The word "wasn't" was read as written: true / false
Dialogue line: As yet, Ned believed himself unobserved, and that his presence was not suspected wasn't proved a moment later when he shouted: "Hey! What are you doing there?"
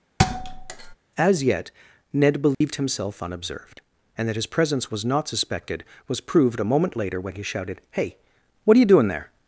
false